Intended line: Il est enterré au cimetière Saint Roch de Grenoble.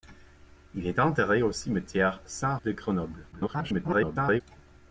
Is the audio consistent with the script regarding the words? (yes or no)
no